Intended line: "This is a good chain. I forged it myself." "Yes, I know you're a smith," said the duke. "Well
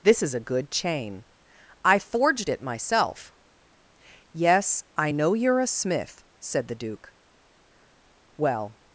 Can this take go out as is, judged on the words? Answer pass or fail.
pass